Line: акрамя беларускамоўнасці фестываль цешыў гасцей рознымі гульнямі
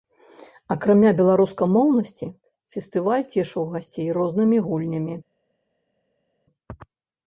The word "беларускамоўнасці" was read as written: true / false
true